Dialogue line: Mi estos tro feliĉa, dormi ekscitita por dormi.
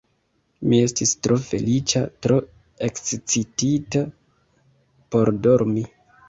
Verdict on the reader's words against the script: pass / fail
fail